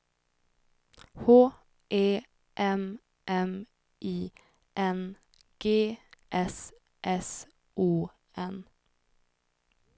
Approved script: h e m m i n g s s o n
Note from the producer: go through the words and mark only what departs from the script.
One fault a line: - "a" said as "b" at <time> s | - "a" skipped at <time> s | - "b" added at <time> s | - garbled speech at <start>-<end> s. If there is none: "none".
none